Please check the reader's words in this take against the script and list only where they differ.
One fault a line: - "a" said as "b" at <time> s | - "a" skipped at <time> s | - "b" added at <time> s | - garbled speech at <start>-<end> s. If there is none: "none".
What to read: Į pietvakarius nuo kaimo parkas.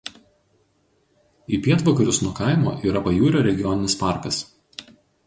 - "yra Pajūrio regioninis" added at 2.9 s